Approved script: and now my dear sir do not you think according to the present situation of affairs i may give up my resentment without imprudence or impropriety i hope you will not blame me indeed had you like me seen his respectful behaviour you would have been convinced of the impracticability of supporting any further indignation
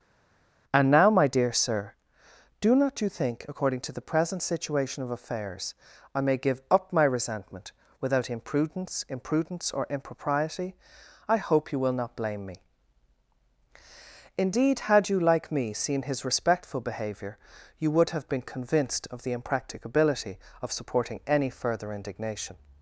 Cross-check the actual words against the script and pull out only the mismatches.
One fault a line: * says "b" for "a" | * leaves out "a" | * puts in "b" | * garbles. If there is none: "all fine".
* puts in "imprudence"